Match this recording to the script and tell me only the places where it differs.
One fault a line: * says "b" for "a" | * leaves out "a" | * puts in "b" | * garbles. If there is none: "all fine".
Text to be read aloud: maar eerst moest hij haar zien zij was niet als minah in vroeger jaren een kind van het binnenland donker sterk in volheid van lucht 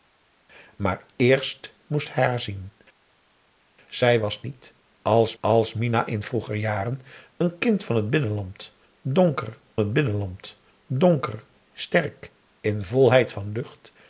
* puts in "als"
* puts in "het binnenland donker"